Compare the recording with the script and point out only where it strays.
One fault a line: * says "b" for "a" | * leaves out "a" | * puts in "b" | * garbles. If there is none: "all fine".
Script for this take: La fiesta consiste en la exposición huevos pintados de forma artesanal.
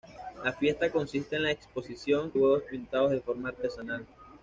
all fine